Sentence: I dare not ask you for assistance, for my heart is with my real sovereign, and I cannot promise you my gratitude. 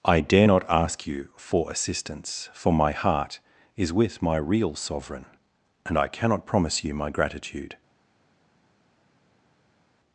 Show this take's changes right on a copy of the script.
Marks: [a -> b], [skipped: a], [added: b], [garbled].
I dare not ask you for assistance, for my heart is with my real sovereign, and I cannot promise you my gratitude.